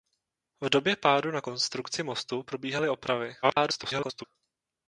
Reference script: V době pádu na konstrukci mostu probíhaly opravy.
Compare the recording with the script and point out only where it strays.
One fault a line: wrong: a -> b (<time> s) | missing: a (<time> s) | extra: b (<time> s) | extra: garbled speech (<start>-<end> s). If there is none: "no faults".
extra: garbled speech (3.4-4.2 s)